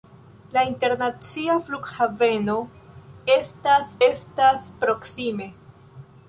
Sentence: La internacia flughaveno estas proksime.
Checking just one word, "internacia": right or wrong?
right